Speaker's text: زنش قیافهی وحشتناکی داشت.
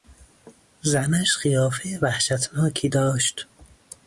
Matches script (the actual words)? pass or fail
pass